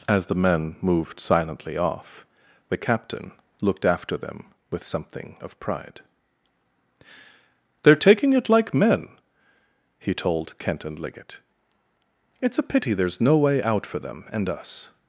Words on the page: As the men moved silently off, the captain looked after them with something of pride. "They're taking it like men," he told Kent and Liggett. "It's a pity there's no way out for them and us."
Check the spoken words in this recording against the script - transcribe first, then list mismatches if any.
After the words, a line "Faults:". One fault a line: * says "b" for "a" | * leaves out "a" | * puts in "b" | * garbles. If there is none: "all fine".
As the men moved silently off, the captain looked after them with something of pride. "They're taking it like men," he told Kent and Liggett. "It's a pity there's no way out for them and us."
Faults:
all fine